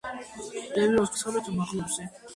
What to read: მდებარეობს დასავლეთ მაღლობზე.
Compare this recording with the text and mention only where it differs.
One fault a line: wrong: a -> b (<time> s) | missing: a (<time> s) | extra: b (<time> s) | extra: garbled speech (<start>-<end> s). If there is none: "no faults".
no faults